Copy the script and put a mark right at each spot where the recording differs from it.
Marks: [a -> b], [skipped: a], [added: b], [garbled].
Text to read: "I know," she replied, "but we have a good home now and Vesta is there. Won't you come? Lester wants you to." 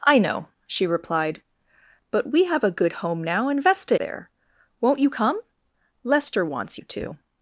"I know," she replied, "but we have a good home now and Vesta [skipped: is] there. Won't you come? Lester wants you to."